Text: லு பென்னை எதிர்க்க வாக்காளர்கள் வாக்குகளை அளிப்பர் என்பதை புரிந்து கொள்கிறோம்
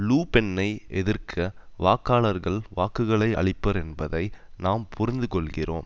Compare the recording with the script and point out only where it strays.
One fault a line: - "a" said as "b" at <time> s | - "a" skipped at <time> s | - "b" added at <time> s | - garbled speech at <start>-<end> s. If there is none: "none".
- "நாம்" added at 4.6 s